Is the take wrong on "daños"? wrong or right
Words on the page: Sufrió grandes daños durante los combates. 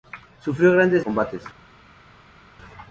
wrong